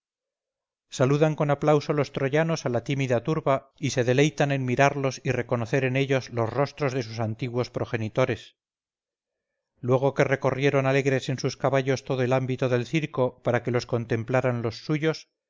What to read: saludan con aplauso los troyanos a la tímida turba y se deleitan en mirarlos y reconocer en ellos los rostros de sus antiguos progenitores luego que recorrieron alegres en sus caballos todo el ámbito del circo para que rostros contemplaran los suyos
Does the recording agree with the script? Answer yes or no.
no